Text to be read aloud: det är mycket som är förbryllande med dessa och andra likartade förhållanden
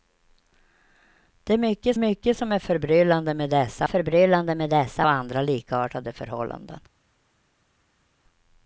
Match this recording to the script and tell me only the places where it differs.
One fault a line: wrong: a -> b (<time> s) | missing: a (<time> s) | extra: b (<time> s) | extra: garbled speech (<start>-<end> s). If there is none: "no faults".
extra: mycket (2.0 s)
extra: förbryllande med dessa (3.8 s)